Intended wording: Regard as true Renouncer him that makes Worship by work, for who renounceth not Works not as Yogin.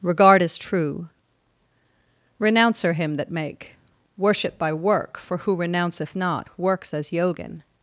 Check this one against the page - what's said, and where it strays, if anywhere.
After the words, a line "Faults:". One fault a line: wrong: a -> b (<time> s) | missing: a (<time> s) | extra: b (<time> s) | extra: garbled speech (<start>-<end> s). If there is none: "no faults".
Regard as true Renouncer him that make Worship by work, for who renounceth not Works as Yogin.
Faults:
wrong: makes -> make (3.3 s)
missing: not (6.9 s)